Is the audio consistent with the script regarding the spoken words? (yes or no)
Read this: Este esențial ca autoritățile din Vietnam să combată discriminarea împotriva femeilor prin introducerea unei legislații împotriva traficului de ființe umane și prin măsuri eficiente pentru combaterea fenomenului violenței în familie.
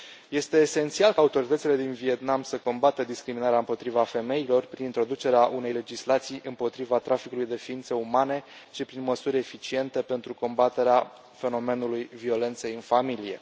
yes